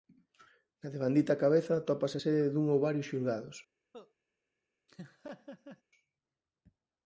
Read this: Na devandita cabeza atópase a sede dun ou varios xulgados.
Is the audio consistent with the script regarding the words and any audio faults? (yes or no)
no